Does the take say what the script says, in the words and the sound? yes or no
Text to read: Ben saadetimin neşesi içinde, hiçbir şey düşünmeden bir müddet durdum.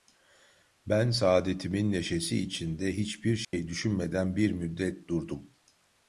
no